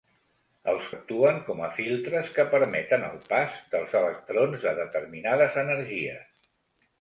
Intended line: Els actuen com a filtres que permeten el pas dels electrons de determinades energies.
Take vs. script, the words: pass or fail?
pass